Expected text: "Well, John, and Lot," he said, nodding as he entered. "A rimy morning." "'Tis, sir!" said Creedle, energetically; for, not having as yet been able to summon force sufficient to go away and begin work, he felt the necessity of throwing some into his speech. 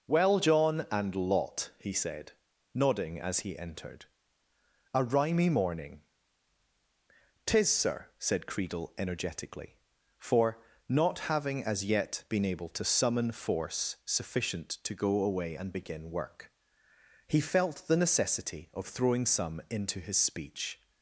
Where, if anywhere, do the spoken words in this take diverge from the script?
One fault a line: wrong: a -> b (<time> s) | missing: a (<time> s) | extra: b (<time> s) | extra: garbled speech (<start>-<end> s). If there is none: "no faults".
no faults